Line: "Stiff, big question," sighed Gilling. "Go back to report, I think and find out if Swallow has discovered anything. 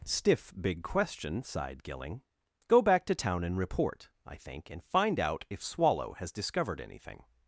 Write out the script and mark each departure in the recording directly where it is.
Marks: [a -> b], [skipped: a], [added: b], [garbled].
"Stiff, big question," sighed Gilling. "Go back to [added: town and] report, I think and find out if Swallow has discovered anything.